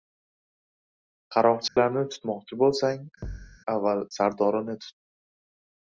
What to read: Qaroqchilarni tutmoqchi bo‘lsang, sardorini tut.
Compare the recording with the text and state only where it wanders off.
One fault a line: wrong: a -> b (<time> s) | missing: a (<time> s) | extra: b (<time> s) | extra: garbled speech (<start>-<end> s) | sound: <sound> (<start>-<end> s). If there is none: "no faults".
sound: dropout (1.7-1.8 s)
sound: thud (3.2-3.6 s)
extra: avval (3.8 s)